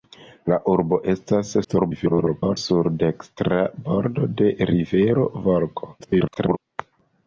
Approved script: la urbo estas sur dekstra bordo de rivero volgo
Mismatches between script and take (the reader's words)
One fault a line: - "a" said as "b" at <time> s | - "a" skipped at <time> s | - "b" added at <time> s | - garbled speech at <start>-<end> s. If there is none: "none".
- garbled speech at 1.6-2.6 s
- garbled speech at 6.0-6.6 s